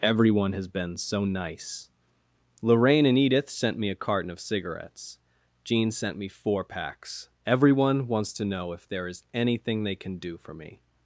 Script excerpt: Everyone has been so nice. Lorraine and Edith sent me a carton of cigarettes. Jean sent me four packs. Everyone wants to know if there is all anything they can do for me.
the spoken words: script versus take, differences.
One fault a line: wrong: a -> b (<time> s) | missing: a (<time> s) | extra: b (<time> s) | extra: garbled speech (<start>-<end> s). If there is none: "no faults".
missing: all (9.2 s)